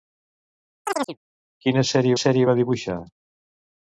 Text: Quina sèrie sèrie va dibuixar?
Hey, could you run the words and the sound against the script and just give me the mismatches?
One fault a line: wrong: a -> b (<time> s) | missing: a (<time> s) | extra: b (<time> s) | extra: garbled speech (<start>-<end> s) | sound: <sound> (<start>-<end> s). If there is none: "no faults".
sound: chirp (0.8-1.2 s)